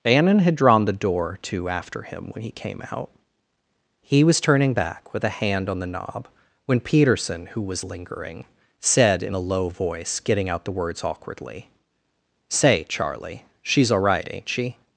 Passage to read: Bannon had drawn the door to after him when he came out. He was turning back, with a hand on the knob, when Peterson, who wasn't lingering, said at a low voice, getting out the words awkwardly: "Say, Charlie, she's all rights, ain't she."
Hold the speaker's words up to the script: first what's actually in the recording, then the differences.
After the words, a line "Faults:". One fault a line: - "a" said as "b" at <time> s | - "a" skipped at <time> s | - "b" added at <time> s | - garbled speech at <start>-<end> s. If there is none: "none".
Bannon had drawn the door to after him when he came out. He was turning back, with a hand on the knob, when Peterson, who was lingering, said in a low voice, getting out the words awkwardly: "Say, Charlie, she's all right, ain't she."
Faults:
- "wasn't" said as "was" at 7.6 s
- "at" said as "in" at 9.2 s
- "rights" said as "right" at 14.0 s